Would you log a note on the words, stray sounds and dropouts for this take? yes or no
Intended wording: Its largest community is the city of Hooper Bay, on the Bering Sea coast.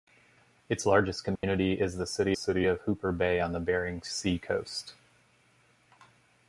yes